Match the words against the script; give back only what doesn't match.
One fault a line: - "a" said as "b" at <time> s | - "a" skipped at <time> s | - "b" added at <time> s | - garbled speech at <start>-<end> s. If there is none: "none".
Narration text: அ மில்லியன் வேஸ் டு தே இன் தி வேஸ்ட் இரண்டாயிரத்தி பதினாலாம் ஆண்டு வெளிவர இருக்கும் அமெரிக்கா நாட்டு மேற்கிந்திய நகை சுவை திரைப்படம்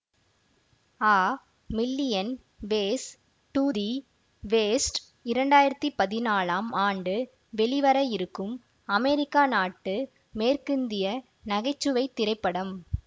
- "தே இன்" skipped at 3.6 s